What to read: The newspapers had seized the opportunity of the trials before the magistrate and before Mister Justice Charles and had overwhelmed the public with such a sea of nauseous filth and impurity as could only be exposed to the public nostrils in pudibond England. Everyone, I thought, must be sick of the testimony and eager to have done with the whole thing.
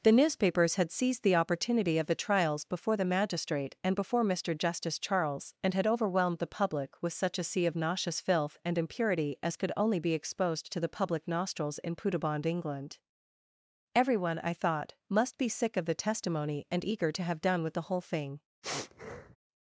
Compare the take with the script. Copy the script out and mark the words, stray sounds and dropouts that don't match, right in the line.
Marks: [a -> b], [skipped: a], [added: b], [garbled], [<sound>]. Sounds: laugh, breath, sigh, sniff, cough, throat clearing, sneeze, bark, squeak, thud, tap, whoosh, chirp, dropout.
The newspapers had seized the opportunity of the trials before the magistrate and before Mister Justice Charles and had overwhelmed the public with such a sea of nauseous filth and impurity as could only be exposed to the public nostrils in pudibond England. Everyone, I thought, must be sick of the testimony and eager to have done with the whole thing. [sniff]